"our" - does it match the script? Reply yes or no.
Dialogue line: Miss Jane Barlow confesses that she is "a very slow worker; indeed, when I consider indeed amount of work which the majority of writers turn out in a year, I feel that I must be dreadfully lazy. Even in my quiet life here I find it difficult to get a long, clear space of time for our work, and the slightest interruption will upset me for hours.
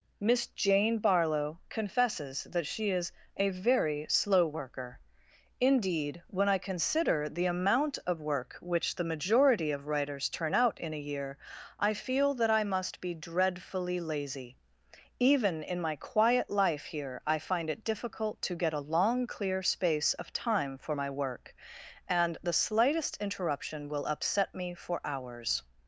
no